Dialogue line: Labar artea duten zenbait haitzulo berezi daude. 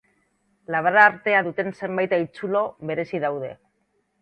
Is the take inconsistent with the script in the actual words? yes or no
no